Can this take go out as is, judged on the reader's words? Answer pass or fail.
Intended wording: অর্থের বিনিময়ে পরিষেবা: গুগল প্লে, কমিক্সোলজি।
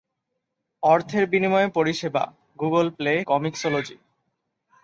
pass